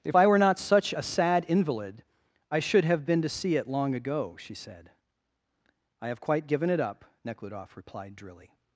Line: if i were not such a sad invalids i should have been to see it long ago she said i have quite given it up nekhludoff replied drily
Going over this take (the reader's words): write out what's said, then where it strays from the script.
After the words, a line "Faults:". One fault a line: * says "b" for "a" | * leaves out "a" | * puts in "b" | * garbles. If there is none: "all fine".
if i were not such a sad invalid i should have been to see it long ago she said i have quite given it up nekhludoff replied drily
Faults:
* says "invalid" for "invalids"